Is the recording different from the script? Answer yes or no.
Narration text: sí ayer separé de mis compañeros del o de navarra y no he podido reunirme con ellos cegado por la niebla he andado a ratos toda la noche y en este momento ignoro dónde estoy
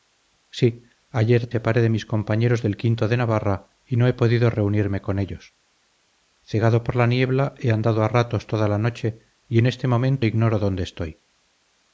no